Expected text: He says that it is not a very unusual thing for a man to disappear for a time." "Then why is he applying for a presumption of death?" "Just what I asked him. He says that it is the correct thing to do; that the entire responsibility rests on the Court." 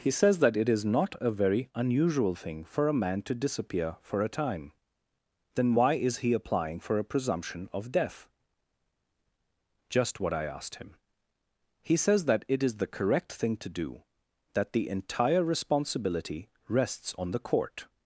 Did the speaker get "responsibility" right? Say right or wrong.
right